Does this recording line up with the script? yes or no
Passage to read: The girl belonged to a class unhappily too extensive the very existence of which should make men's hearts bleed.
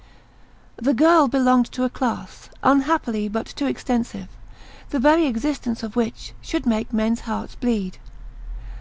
no